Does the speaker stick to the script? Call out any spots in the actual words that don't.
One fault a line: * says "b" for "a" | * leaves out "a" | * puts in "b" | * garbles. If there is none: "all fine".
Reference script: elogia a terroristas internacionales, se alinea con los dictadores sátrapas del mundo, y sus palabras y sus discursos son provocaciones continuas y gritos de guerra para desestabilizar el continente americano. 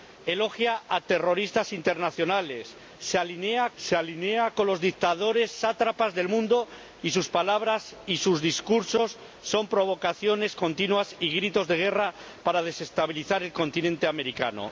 * puts in "se alinea"